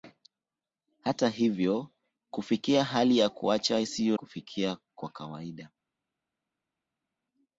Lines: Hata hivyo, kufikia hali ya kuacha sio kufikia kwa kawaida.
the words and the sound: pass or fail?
pass